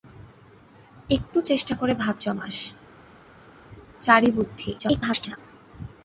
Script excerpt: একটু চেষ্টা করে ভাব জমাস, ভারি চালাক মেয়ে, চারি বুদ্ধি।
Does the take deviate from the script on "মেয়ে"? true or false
true